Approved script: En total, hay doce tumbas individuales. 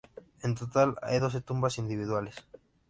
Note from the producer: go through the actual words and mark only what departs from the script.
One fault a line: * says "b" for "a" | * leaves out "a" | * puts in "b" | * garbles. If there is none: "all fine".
all fine